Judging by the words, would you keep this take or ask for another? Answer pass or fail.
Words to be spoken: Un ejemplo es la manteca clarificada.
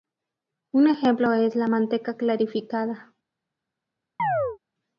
pass